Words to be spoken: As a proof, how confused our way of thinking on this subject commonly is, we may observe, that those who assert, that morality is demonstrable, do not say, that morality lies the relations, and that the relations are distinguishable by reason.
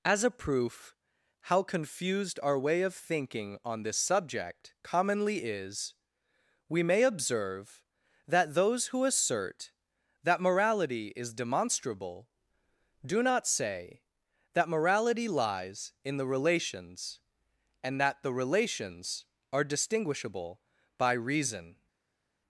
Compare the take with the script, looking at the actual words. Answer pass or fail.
fail